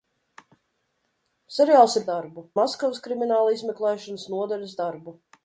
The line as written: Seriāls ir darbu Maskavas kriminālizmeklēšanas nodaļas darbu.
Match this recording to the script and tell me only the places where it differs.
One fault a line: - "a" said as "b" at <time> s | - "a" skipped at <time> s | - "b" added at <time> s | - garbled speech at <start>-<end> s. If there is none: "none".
none